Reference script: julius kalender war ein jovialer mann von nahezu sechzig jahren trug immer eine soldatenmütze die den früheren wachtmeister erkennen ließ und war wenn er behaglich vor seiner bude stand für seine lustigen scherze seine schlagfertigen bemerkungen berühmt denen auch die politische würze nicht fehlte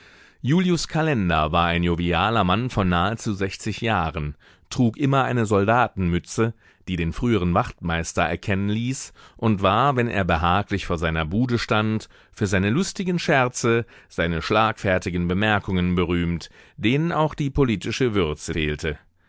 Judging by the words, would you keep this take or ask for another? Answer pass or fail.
fail